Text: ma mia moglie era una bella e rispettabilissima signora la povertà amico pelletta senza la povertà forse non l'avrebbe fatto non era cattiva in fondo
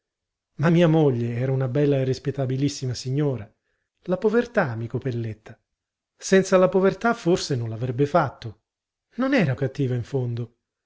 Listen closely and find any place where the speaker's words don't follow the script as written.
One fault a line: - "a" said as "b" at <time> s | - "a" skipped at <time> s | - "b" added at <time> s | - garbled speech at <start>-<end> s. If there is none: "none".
none